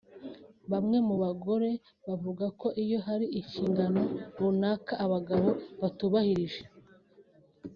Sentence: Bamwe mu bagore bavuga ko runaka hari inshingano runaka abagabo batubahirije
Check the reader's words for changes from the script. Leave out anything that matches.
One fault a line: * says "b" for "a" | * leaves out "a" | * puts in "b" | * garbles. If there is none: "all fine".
* says "iyo" for "runaka"